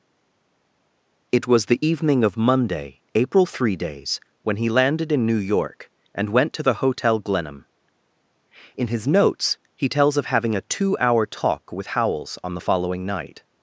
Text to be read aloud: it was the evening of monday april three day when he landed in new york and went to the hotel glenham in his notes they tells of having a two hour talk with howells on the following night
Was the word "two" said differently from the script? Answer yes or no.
no